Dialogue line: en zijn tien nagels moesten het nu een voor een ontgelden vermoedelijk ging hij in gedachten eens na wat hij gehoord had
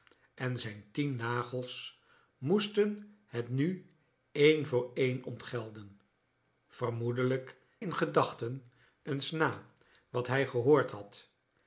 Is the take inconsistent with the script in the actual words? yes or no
yes